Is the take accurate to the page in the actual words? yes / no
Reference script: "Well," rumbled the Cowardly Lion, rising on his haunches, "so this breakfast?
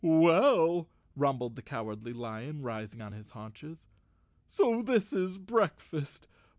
no